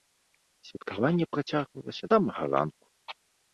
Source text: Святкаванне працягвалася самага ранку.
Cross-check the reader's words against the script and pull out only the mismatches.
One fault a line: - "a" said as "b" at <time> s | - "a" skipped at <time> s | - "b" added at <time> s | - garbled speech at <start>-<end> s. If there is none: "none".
none